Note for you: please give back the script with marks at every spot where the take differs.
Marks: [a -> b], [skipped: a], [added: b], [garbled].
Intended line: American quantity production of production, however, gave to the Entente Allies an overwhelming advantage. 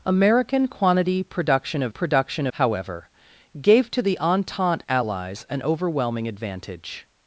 American quantity production of production, however, gave to the Entente Allies an overwhelming advantage.